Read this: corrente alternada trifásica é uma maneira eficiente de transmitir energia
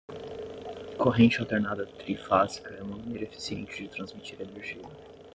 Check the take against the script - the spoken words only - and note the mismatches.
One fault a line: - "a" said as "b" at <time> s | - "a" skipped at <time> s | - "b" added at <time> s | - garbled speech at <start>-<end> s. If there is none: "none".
none